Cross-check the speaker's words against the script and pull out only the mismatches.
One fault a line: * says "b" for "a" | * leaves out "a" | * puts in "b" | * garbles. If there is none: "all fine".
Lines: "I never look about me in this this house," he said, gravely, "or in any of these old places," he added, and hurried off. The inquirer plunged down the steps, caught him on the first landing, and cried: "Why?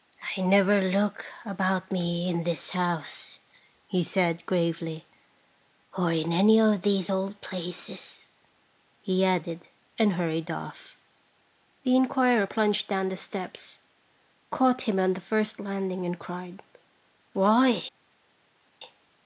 * leaves out "this"